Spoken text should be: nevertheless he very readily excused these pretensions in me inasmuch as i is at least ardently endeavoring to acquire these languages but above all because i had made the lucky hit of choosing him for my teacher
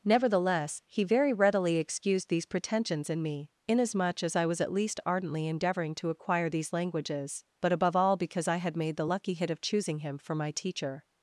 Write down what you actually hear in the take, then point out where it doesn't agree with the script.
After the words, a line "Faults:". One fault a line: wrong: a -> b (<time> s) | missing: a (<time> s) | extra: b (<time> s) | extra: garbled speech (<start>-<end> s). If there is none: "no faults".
nevertheless he very readily excused these pretensions in me inasmuch as i was at least ardently endeavoring to acquire these languages but above all because i had made the lucky hit of choosing him for my teacher
Faults:
wrong: is -> was (4.5 s)